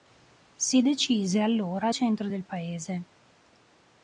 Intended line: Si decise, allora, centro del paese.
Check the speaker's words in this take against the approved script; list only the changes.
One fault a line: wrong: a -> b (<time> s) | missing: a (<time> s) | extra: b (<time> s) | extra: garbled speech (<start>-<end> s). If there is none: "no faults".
no faults